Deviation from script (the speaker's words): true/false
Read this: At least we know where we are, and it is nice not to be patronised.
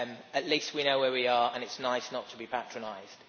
false